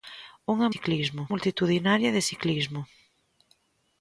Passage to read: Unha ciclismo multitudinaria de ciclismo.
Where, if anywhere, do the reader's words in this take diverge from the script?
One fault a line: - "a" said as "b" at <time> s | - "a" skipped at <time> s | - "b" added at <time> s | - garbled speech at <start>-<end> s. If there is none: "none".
none